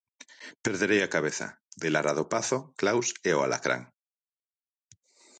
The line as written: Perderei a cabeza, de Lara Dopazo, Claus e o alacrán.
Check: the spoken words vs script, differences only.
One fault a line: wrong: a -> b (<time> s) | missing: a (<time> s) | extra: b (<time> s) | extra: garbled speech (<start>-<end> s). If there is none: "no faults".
no faults